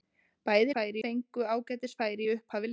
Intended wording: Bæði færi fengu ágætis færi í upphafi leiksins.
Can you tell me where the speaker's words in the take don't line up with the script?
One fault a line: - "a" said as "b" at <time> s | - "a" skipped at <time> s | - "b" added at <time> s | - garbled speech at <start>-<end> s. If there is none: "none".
none